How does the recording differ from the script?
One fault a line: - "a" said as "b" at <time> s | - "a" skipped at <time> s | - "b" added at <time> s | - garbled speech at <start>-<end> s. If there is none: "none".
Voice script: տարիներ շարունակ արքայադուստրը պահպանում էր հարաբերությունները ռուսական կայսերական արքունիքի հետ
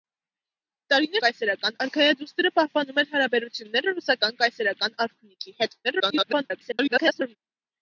- "շարունակ" said as "կայսերական" at 1.3 s
- garbled speech at 5.8-7.4 s